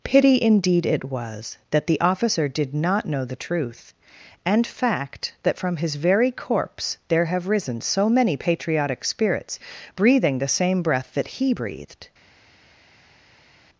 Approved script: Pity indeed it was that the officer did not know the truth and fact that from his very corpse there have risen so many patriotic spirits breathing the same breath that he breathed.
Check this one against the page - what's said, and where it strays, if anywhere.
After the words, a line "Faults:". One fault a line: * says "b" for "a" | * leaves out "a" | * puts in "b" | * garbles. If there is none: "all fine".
Pity indeed it was that the officer did not know the truth and fact that from his very corpse there have risen so many patriotic spirits breathing the same breath that he breathed.
Faults:
all fine